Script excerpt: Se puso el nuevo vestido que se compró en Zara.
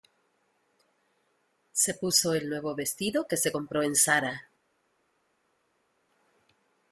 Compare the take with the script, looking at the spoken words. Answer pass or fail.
pass